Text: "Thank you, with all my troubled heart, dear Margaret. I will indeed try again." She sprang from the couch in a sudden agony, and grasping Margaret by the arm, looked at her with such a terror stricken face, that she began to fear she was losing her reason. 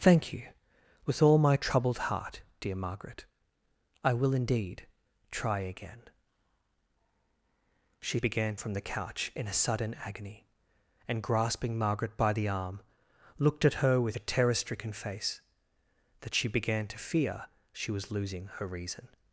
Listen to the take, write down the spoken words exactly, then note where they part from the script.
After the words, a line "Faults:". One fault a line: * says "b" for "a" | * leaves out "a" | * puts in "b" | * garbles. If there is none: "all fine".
"Thank you, with all my troubled heart, dear Margaret. I will indeed try again." She began from the couch in a sudden agony, and grasping Margaret by the arm, looked at her with a terror stricken face, that she began to fear she was losing her reason.
Faults:
* says "began" for "sprang"
* leaves out "such"